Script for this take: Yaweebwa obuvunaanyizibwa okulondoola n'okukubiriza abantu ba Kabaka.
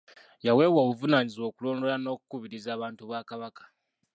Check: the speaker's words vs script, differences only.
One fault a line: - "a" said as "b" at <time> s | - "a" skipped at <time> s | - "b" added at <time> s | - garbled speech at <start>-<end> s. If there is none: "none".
none